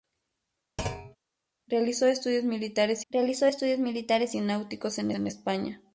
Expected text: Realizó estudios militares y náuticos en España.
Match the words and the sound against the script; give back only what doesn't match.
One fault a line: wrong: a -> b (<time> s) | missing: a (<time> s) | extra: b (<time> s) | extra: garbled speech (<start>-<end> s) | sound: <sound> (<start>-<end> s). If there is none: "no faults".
sound: thud (0.8-1.2 s)
extra: realizó estudios militares (3.1 s)
extra: en (5.1 s)